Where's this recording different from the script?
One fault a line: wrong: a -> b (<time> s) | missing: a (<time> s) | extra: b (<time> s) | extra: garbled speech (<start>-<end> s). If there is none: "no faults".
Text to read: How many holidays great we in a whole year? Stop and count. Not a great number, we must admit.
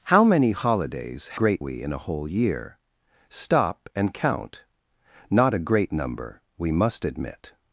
no faults